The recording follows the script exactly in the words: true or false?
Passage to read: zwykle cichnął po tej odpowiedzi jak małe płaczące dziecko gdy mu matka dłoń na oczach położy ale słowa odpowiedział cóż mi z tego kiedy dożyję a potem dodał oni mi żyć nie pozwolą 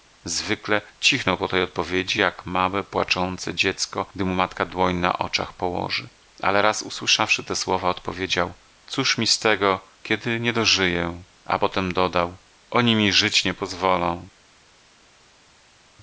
false